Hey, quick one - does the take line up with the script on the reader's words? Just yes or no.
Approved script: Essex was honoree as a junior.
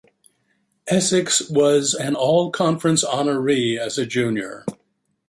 no